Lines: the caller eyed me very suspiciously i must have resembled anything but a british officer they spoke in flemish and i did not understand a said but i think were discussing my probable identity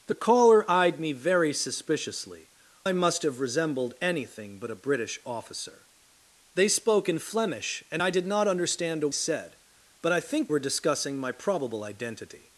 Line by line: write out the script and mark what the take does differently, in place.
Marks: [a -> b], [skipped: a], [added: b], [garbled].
the caller eyed me very suspiciously i must have resembled anything but a british officer they spoke in flemish and i did not understand a said but i think were discussing my probable identity